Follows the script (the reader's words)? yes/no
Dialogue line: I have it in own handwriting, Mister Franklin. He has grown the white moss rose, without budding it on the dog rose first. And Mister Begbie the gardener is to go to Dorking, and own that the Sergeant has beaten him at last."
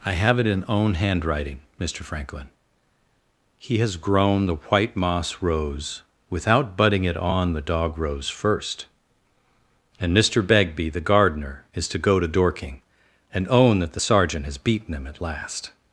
yes